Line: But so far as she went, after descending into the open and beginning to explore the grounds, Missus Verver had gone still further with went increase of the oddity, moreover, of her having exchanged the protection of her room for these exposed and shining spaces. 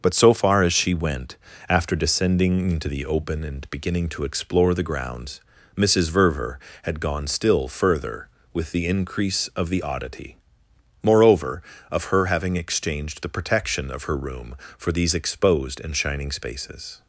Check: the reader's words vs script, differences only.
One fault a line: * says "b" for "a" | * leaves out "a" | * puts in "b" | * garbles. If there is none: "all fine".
* says "the" for "went"